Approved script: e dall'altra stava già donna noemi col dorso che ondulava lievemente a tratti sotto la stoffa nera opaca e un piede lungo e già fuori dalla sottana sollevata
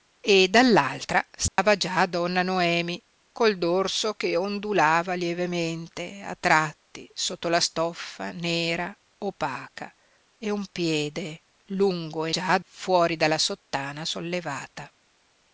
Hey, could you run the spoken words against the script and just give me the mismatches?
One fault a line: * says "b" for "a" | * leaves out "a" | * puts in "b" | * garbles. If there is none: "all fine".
all fine